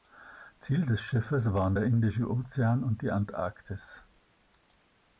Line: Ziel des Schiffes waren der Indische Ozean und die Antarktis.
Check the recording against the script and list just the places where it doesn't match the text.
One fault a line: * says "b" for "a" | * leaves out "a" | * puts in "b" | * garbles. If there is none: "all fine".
all fine